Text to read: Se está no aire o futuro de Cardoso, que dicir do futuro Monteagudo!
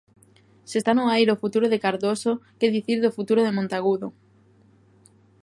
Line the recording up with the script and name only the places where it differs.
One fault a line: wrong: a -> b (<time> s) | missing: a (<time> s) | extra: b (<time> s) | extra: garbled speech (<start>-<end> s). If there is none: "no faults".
extra: de (3.4 s)